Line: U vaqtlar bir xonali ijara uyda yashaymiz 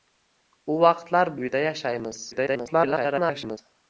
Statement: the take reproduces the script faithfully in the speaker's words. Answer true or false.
false